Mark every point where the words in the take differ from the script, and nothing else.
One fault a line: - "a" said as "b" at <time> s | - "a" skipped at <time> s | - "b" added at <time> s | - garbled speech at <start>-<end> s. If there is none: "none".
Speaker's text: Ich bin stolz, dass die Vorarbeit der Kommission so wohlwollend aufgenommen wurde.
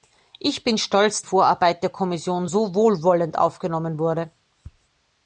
- "dass die" skipped at 1.2 s